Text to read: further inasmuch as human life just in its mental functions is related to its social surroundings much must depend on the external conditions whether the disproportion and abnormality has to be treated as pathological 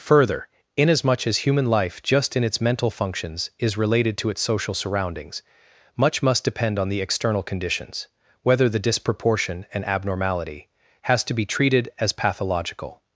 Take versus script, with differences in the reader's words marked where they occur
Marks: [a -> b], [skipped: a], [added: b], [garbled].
further inasmuch as human life just in its mental functions is related to its social surroundings much must depend on the external conditions whether the disproportion and abnormality has to be treated as pathological